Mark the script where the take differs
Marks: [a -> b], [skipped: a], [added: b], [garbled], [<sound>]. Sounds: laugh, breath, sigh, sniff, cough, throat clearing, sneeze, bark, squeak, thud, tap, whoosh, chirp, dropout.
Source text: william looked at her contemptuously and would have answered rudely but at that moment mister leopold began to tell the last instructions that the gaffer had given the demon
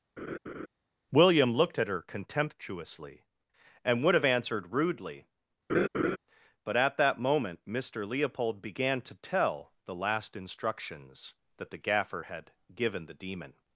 [laugh] william looked at her contemptuously and would have answered rudely [laugh] but at that moment mister leopold began to tell the last instructions that the gaffer had given the demon